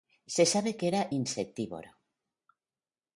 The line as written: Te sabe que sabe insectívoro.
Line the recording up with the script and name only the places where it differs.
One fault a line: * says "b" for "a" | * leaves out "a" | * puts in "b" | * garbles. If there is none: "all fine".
* says "Se" for "Te"
* says "era" for "sabe"